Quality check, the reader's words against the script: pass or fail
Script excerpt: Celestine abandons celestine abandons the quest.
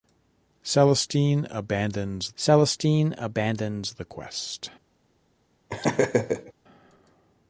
pass